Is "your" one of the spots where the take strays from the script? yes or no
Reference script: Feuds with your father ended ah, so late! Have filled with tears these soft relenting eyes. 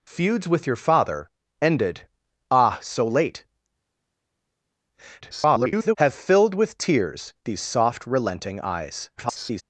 no